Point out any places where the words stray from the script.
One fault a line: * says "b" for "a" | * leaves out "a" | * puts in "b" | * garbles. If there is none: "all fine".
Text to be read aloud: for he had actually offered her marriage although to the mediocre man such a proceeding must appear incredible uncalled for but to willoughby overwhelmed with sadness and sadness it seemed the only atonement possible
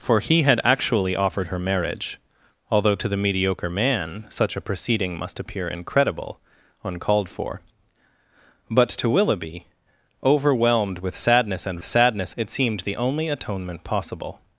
all fine